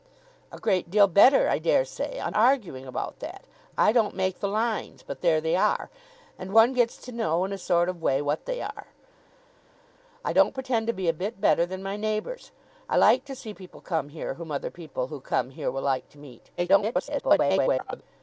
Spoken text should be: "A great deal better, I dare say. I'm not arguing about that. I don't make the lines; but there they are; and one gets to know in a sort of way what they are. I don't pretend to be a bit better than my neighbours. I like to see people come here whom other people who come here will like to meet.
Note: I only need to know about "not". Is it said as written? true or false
false